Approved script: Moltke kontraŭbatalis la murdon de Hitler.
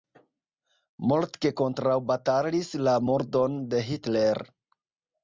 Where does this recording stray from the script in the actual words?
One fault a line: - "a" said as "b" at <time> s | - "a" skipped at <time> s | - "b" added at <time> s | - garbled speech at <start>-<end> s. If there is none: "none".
none